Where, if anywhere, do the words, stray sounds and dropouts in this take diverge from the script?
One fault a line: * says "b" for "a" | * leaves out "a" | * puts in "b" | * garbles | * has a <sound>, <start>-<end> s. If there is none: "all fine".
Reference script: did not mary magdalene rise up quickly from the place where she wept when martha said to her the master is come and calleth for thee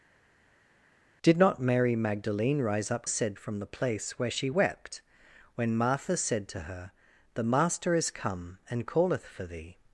* says "said" for "quickly"